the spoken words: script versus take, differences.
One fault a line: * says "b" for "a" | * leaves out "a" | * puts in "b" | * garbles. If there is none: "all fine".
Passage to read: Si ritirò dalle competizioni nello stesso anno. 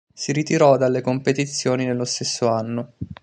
all fine